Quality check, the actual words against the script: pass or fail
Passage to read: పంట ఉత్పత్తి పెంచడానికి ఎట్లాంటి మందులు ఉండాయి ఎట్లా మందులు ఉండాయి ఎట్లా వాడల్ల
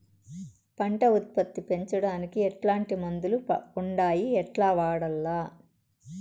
fail